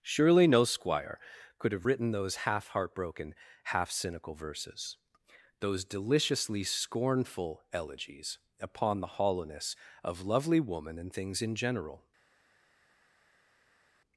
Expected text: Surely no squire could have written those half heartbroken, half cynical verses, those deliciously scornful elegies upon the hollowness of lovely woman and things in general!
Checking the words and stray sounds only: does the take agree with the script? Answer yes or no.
yes